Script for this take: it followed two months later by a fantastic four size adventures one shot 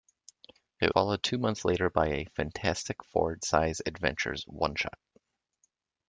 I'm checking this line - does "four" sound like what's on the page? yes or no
yes